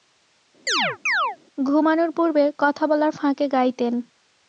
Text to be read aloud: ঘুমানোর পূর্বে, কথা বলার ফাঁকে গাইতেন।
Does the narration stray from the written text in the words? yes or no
no